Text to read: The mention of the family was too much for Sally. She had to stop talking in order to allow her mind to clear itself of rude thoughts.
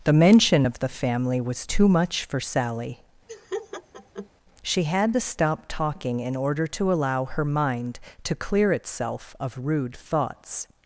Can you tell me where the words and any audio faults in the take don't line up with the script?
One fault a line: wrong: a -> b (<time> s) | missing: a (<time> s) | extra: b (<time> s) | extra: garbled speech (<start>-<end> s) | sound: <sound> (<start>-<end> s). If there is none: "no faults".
sound: laugh (3.3-4.3 s)